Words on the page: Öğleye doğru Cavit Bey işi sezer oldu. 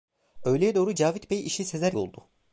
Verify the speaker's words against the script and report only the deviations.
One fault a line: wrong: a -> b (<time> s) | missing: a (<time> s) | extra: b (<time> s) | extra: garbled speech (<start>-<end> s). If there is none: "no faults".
no faults